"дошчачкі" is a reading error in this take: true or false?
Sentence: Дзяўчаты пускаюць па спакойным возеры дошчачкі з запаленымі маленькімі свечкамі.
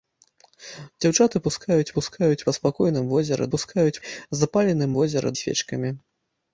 true